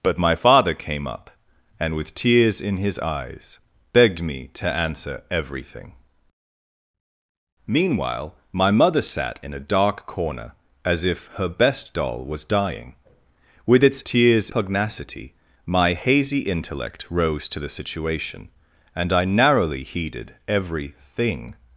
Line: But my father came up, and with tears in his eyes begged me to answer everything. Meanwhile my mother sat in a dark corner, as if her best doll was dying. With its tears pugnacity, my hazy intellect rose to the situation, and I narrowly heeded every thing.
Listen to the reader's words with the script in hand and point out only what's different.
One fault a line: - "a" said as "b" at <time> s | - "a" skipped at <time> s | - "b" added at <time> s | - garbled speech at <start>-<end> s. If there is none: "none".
none